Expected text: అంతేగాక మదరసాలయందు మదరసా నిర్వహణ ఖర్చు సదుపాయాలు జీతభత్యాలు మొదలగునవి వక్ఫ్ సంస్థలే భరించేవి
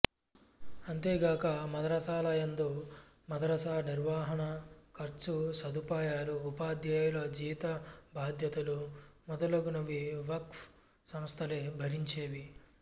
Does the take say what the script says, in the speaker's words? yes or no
no